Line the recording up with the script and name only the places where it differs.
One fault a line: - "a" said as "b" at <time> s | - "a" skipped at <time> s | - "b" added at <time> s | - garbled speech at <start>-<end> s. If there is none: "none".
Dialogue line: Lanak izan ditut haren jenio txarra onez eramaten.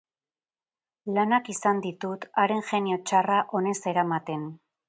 none